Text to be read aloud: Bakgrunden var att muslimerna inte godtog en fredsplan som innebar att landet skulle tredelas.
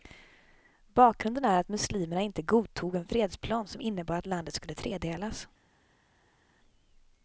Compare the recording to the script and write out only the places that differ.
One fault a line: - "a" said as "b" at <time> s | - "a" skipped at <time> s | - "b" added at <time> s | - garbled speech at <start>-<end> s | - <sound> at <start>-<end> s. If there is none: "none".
- "var" said as "är" at 1.4 s